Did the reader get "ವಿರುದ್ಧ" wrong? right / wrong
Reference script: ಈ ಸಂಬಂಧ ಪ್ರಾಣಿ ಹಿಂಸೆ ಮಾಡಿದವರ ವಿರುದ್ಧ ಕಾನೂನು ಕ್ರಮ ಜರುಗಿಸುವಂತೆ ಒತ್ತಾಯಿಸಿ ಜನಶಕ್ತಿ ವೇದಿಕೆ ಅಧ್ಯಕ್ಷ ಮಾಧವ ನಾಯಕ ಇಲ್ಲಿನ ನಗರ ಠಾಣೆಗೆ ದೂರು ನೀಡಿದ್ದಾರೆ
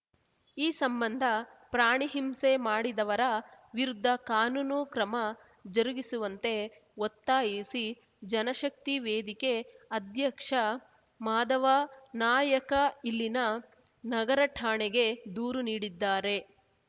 right